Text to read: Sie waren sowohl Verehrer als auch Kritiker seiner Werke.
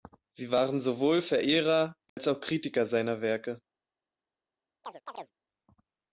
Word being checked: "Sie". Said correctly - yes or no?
yes